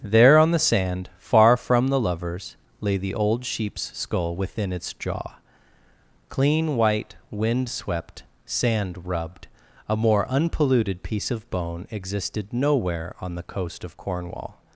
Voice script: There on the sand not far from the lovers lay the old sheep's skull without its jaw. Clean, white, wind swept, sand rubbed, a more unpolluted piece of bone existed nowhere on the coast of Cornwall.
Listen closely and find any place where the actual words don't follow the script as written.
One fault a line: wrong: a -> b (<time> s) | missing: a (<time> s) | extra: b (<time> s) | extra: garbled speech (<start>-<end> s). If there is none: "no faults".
missing: not (1.1 s)
wrong: without -> within (4.3 s)